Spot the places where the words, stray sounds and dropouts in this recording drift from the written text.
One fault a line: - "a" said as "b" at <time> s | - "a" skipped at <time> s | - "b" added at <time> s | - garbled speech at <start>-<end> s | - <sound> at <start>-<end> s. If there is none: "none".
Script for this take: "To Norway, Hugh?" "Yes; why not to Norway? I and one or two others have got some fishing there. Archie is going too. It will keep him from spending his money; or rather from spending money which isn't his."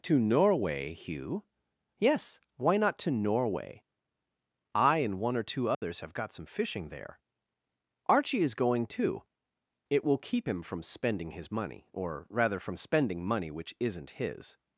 - dropout at 5.7-5.8 s